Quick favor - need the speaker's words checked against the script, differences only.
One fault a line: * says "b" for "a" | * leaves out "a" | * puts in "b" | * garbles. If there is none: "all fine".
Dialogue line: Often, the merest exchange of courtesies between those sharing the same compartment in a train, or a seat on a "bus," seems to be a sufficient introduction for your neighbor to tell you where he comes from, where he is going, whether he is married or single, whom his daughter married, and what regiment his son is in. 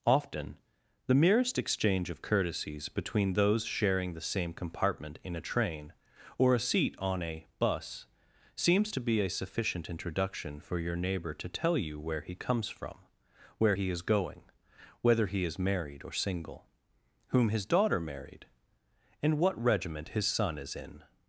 all fine